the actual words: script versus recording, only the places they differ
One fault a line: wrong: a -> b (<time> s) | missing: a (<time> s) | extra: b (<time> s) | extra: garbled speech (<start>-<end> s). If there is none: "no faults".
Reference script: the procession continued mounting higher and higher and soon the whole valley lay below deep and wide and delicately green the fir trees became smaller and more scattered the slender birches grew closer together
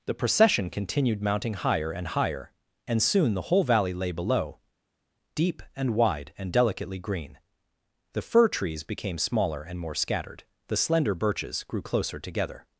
no faults